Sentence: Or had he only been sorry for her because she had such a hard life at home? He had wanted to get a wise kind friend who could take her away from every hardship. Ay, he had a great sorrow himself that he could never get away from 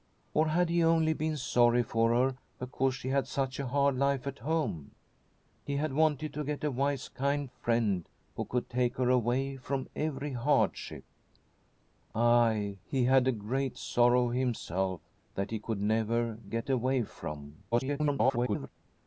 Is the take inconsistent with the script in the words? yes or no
yes